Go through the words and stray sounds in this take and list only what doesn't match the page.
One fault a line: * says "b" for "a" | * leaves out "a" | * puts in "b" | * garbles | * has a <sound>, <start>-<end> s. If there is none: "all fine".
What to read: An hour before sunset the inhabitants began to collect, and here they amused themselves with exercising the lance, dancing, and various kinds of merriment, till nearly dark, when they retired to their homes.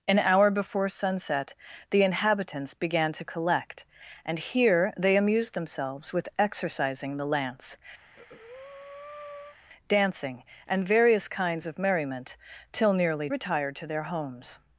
* has a breath, 8.0-9.6 s
* leaves out "dark when they"